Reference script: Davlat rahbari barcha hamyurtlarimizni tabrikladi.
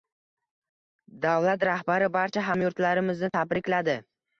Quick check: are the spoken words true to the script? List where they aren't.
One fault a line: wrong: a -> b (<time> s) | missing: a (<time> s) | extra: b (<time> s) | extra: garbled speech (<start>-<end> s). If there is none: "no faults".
no faults